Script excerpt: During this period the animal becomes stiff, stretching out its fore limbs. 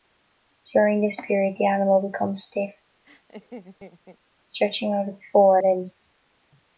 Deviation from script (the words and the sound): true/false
true